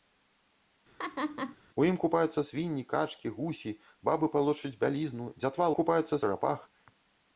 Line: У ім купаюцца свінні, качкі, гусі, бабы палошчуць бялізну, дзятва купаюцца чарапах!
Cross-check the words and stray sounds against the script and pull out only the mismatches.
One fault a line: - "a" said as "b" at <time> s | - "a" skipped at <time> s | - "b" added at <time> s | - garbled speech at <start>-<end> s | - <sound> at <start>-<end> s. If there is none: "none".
- laugh at 1.0-1.6 s